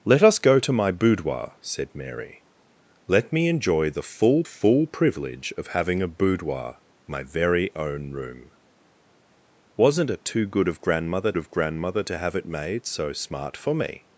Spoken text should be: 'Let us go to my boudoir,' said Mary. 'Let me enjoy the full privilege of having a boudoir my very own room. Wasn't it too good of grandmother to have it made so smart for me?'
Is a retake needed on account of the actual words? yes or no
yes